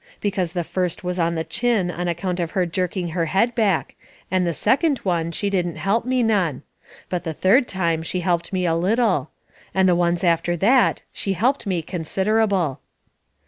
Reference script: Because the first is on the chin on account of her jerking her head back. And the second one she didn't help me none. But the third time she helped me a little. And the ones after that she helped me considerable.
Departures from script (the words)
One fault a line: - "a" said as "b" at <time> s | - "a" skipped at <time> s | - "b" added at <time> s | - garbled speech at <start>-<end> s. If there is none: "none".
- "is" said as "was" at 1.0 s